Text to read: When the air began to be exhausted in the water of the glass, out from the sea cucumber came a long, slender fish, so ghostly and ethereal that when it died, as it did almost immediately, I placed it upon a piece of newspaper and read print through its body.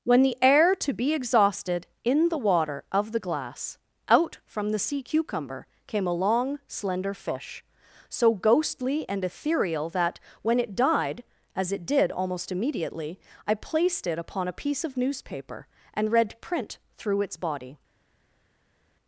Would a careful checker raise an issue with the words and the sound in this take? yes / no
yes